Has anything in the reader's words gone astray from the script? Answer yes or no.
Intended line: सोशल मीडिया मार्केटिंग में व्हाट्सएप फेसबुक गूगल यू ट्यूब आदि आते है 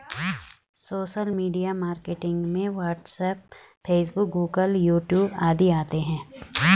no